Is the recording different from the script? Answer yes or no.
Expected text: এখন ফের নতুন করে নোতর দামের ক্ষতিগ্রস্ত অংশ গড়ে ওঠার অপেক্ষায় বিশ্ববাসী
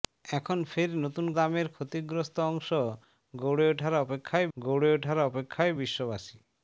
yes